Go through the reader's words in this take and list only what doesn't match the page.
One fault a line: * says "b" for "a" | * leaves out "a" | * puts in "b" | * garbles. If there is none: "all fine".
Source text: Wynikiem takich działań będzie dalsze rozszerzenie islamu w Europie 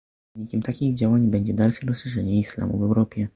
all fine